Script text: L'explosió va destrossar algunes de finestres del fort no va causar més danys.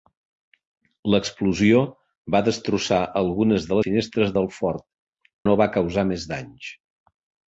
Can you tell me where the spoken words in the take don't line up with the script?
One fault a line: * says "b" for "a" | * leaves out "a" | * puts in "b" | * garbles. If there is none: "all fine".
all fine